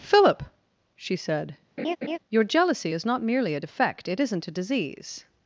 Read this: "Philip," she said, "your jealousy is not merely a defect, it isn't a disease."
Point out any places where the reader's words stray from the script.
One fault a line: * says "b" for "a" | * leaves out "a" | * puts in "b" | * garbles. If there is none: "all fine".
all fine